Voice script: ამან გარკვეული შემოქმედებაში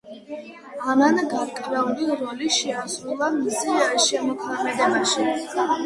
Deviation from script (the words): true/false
true